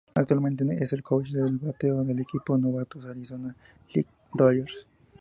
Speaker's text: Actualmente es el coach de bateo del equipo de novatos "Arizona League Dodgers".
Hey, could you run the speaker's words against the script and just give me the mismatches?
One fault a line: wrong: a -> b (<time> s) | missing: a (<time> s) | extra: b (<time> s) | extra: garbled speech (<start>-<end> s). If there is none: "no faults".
no faults